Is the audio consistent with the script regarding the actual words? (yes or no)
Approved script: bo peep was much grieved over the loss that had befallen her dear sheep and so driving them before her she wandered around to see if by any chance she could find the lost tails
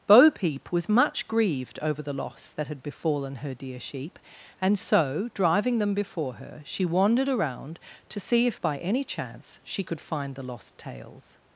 yes